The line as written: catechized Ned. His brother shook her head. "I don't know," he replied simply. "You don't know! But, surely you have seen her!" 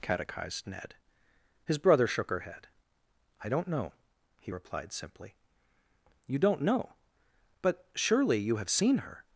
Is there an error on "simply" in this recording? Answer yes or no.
no